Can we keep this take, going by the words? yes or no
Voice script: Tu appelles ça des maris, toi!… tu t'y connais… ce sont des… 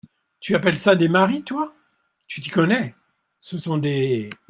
yes